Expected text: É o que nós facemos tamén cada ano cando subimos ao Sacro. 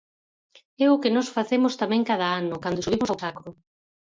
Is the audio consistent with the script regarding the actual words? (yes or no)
yes